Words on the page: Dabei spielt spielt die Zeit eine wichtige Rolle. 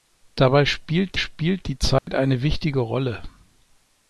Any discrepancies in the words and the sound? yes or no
yes